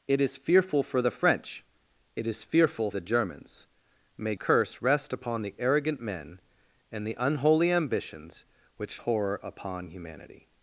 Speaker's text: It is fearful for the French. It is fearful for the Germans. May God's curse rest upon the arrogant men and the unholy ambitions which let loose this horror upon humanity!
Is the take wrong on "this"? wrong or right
wrong